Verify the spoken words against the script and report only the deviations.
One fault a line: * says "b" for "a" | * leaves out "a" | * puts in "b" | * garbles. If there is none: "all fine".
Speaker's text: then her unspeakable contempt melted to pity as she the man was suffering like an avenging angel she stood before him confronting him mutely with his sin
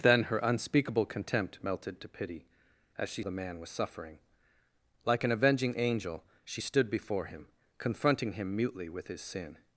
all fine